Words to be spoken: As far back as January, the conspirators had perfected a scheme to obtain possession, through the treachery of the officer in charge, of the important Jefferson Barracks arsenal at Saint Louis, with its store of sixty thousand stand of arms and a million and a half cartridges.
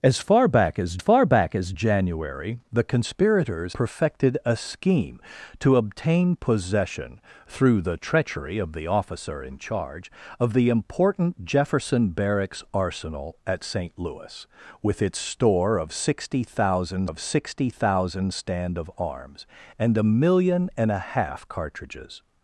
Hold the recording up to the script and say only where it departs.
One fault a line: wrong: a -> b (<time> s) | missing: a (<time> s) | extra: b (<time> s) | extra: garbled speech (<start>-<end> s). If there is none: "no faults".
extra: far back as (1.0 s)
missing: had (3.8 s)
extra: of sixty thousand (17.0 s)